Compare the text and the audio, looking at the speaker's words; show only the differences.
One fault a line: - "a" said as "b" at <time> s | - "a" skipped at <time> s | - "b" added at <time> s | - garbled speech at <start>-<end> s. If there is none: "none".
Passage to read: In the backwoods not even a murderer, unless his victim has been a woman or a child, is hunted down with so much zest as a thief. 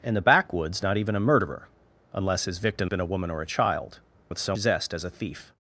- "has" skipped at 2.9 s
- "is hunted down" skipped at 4.0 s
- "much" skipped at 4.5 s